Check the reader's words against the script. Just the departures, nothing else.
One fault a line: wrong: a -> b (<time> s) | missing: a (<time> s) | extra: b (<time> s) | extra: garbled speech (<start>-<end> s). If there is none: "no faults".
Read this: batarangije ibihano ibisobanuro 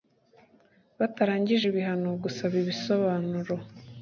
extra: gusaba (2.2 s)